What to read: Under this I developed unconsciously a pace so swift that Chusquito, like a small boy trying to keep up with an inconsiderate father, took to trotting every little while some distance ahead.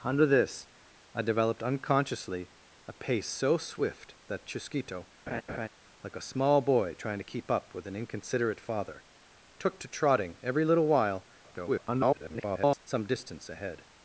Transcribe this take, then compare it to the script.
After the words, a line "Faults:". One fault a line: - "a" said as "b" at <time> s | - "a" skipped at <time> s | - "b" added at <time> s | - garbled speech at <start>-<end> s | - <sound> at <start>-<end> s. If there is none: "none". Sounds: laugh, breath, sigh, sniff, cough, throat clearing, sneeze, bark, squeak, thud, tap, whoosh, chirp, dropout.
Under this I developed unconsciously a pace so swift that Chusquito, like a small boy trying to keep up with an inconsiderate father, took to trotting every little while [garbled] some distance ahead.
Faults:
- laugh at 5.3-5.7 s
- garbled speech at 11.4-12.8 s